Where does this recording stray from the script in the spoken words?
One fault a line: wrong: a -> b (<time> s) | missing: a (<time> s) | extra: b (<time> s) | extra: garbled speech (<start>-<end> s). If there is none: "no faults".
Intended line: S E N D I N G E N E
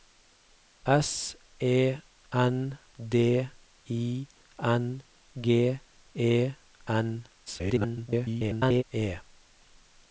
extra: garbled speech (7.5-8.8 s)